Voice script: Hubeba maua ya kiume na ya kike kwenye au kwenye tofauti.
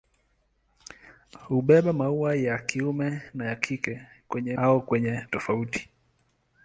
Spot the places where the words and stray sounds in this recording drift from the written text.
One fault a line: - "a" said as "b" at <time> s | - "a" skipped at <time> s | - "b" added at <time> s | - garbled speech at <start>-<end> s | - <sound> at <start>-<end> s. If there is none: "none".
none